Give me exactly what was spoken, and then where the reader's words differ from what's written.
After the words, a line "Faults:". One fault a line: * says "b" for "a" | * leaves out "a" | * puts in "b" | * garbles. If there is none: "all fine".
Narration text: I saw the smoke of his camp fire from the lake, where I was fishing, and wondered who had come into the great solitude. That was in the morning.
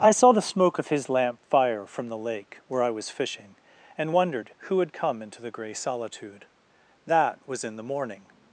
I saw the smoke of his lamp fire from the lake, where I was fishing, and wondered who had come into the grey solitude. That was in the morning.
Faults:
* says "lamp" for "camp"
* says "grey" for "great"